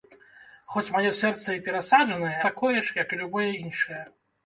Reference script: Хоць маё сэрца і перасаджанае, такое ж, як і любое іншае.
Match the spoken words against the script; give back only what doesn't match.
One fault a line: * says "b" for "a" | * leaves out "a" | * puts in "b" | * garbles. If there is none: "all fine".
all fine